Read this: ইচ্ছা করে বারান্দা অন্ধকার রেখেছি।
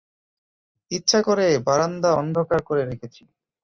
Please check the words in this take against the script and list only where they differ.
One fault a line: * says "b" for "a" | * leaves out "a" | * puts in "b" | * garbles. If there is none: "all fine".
* puts in "করে"